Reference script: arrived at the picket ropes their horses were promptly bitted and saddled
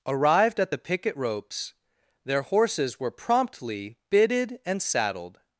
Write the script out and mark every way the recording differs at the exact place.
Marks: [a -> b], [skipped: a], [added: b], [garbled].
arrived at the picket ropes their horses were promptly bitted and saddled